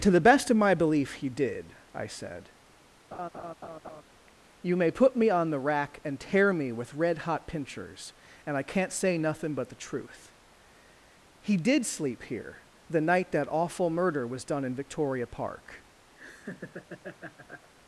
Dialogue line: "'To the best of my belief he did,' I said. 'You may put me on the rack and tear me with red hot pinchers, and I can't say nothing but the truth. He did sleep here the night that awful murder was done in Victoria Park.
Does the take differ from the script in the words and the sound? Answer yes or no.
yes